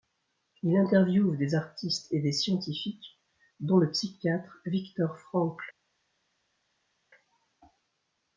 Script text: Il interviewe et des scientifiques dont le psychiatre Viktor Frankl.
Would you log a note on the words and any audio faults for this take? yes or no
yes